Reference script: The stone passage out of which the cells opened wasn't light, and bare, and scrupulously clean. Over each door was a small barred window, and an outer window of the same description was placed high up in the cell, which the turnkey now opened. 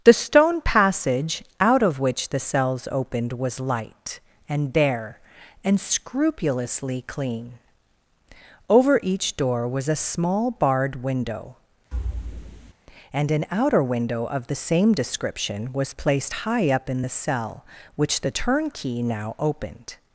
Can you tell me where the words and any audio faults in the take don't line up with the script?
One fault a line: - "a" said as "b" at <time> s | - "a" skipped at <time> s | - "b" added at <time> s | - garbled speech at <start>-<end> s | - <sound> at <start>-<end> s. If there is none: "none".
- "wasn't" said as "was" at 3.3 s
- thud at 11.9-12.7 s